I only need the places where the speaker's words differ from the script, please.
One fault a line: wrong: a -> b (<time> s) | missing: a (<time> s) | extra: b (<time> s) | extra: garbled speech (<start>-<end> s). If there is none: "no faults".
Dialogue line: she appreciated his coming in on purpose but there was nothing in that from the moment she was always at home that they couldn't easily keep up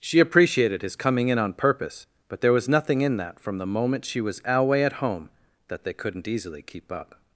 wrong: always -> alway (4.5 s)